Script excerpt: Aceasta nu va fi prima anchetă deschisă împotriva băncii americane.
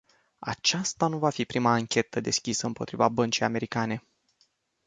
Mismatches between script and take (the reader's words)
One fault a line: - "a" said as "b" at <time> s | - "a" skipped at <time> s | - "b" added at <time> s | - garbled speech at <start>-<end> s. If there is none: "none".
none